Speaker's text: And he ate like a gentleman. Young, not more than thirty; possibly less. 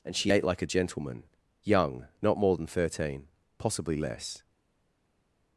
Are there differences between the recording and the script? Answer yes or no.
yes